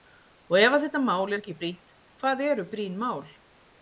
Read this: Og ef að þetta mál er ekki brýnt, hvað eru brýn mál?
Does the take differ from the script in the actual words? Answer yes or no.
no